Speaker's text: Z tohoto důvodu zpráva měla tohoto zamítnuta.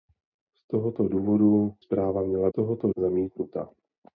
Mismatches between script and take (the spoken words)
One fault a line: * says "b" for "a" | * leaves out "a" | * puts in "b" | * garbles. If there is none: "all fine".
all fine